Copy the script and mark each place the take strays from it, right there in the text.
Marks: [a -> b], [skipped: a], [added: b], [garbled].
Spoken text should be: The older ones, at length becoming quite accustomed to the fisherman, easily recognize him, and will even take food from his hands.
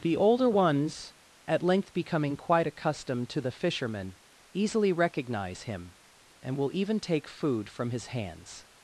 The older ones, at length becoming quite accustomed to the fisherman, easily recognize him, and will even take food from his hands.